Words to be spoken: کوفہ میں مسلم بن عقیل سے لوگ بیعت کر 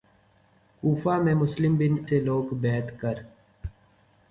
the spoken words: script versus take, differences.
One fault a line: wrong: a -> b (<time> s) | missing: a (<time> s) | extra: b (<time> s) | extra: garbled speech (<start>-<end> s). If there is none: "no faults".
missing: عقیل (2.0 s)